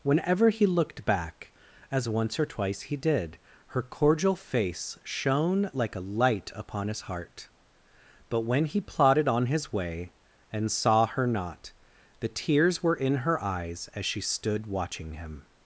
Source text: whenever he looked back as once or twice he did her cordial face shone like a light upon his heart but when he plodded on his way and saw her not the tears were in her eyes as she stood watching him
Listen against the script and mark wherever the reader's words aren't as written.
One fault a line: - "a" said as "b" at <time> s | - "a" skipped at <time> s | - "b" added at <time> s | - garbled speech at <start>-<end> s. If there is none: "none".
none